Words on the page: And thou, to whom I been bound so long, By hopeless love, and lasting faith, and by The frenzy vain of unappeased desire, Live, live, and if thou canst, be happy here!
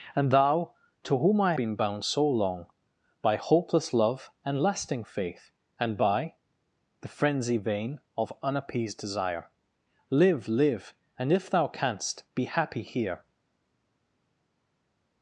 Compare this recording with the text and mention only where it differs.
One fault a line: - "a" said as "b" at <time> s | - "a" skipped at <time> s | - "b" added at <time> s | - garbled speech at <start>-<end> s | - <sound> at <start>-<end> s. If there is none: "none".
none